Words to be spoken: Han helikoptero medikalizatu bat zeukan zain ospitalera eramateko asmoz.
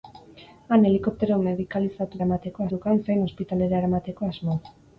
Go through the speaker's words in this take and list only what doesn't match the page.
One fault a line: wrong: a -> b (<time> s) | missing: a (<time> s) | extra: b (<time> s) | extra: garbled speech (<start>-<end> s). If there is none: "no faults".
wrong: bat -> eramateko (2.2 s)